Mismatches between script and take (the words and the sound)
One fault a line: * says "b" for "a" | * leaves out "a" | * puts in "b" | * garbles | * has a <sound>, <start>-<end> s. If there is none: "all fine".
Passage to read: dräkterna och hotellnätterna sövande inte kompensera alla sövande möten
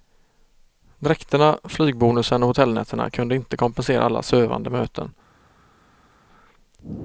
* puts in "flygbonusen"
* says "kunde" for "sövande"